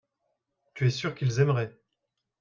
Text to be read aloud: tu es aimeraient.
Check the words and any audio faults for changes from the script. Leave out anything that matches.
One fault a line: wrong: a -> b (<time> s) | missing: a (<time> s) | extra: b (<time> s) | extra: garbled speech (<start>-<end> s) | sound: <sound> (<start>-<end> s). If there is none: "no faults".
extra: sûr qu'ils (0.9 s)